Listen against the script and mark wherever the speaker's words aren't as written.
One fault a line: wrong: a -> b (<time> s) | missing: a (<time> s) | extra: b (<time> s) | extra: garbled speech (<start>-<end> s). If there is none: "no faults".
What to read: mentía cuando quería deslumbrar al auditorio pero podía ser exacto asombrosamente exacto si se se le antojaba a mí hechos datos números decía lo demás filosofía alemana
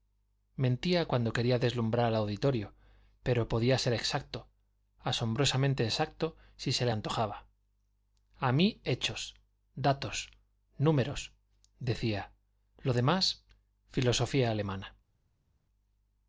missing: se (6.8 s)